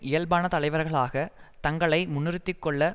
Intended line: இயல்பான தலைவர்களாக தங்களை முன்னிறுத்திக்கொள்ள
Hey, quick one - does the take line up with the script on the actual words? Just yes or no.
yes